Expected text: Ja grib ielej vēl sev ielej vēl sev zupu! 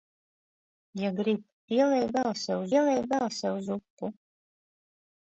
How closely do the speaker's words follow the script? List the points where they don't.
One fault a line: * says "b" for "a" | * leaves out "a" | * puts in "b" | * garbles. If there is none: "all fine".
all fine